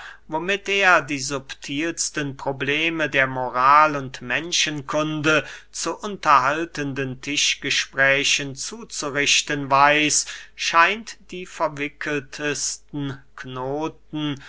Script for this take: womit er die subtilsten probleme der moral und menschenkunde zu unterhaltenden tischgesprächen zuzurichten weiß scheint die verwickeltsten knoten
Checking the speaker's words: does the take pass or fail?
pass